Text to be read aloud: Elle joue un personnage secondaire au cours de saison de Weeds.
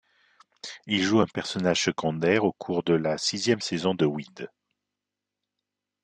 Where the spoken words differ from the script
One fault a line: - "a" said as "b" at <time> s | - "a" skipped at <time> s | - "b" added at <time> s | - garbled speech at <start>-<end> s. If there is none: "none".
- "Elle" said as "Il" at 0.9 s
- "la sixième" added at 2.9 s